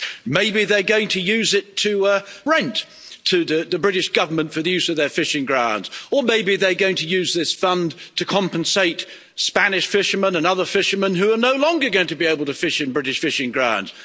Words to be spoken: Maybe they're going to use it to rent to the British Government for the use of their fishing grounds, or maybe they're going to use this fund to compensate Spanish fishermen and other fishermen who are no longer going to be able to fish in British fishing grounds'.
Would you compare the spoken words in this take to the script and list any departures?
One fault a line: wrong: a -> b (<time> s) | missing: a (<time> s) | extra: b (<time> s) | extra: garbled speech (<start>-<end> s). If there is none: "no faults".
no faults